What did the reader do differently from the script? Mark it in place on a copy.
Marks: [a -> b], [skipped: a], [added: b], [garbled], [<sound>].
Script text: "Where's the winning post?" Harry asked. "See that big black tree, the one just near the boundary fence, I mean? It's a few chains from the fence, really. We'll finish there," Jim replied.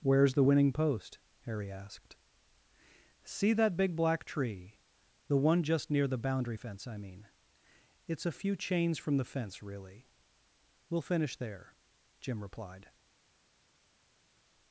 "Where's the winning post?" Harry asked. "See that big black tree, the one just near the boundary fence, I mean? It's a few chains from the fence, really. We'll finish there," Jim replied.